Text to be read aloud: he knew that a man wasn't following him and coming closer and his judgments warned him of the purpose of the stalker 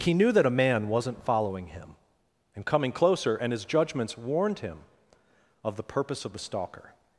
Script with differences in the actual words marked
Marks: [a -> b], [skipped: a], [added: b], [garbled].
he knew that a man wasn't following him and coming closer and his judgments warned him of the purpose of the stalker